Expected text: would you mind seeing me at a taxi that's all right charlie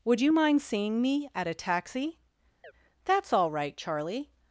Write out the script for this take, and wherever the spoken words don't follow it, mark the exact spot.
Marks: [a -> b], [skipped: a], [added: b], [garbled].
would you mind seeing me at a taxi that's all right charlie